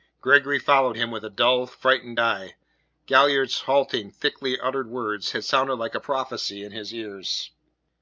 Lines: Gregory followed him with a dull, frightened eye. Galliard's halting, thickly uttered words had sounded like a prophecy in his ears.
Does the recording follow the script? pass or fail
pass